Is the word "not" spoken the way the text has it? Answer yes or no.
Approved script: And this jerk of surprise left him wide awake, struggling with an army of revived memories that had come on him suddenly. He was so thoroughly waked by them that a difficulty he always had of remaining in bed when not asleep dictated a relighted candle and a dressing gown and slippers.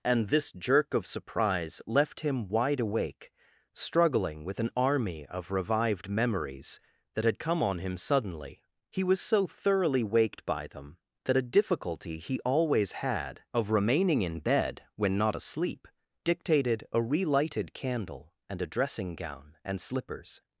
yes